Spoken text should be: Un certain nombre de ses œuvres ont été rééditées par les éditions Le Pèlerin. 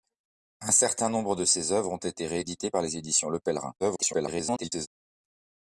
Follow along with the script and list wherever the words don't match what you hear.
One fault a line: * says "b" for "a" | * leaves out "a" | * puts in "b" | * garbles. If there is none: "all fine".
* garbles